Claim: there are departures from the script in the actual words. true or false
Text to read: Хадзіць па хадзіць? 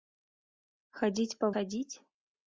false